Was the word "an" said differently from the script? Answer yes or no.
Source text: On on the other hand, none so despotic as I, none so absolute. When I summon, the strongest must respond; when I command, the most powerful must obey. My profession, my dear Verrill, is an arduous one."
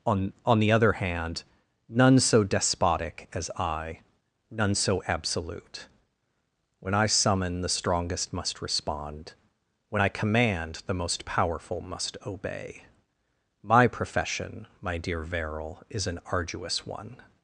no